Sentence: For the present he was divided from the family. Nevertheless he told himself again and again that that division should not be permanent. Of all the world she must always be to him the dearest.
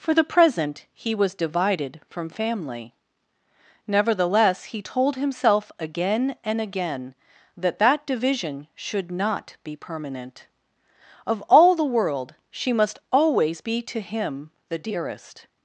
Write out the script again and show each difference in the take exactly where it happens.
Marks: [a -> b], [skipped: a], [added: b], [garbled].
For the present he was divided from [skipped: the] family. Nevertheless he told himself again and again that that division should not be permanent. Of all the world she must always be to him the dearest.